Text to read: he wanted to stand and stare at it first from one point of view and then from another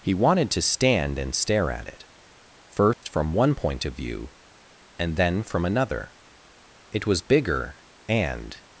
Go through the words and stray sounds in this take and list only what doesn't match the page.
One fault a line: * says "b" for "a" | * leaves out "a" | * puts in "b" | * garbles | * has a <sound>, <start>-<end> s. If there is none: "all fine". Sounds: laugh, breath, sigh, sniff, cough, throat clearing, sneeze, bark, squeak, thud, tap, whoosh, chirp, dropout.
* has a dropout, 2.9-3.0 s
* puts in "it was bigger and"